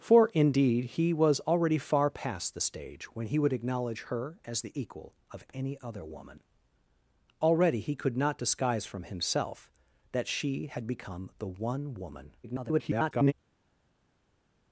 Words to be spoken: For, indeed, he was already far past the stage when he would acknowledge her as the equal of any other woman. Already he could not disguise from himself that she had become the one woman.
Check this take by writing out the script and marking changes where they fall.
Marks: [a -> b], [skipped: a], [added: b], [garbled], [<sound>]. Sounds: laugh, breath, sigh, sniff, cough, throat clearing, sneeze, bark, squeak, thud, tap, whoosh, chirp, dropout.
For, indeed, he was already far past the stage when he would acknowledge her as the equal of any other woman. Already he could not disguise from himself that she had become the one woman. [garbled]